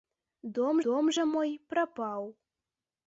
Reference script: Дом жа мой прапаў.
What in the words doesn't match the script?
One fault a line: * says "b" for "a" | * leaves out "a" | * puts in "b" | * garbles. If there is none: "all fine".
* puts in "дом"